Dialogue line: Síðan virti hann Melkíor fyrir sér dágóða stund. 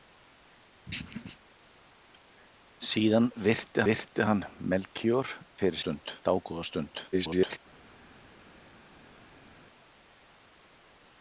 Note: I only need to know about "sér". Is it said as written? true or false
false